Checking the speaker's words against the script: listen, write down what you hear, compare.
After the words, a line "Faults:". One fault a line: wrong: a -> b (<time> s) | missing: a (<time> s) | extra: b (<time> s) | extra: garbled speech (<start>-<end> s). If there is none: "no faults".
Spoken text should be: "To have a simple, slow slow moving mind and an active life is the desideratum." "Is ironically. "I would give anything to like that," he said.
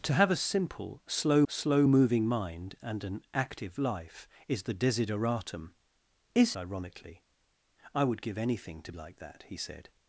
"To have a simple, slow slow moving mind and an active life is the desideratum." "Is ironically. "I would give anything to like that," he said.
Faults:
no faults